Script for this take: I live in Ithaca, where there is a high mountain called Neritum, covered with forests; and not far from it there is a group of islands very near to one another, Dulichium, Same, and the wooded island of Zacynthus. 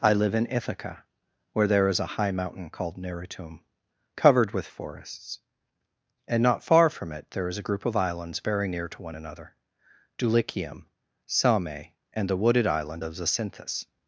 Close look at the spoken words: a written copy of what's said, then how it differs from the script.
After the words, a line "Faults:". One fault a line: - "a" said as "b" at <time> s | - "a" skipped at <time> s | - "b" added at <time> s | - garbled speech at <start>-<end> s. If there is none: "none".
I live in Ithaca, where there is a high mountain called Neritum, covered with forests; and not far from it there is a group of islands very near to one another, Dulichium, Same, and the wooded island of Zacynthus.
Faults:
none